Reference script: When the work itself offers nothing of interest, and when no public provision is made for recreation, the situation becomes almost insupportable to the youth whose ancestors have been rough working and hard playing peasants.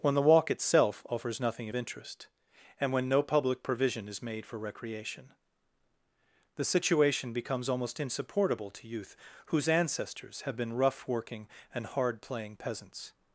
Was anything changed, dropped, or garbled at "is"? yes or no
no